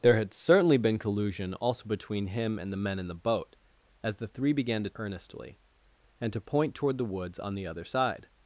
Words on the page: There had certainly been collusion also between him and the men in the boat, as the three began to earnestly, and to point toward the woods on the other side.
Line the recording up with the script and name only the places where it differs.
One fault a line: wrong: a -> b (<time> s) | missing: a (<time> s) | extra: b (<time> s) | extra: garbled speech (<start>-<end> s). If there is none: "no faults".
no faults